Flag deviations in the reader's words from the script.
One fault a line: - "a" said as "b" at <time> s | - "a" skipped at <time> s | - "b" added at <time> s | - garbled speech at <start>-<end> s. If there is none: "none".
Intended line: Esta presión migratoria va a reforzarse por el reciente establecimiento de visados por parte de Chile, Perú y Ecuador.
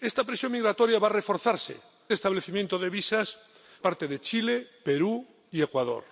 - "por el reciente" skipped at 1.8 s
- "por" skipped at 3.4 s